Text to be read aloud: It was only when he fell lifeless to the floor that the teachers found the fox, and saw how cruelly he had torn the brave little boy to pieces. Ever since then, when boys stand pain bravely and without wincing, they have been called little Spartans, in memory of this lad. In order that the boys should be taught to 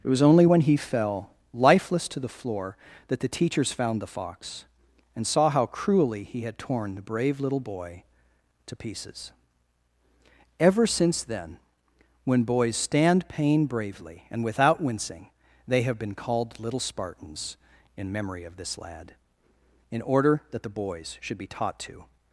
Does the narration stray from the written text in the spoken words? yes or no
no